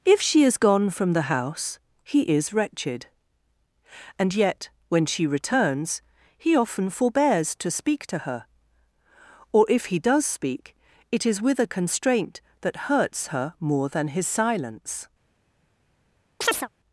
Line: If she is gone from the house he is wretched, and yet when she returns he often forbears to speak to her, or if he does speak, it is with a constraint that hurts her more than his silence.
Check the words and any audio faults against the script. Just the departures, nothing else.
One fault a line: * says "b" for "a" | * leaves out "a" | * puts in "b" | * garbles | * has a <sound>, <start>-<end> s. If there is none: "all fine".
* has a chirp, 16.4-16.7 s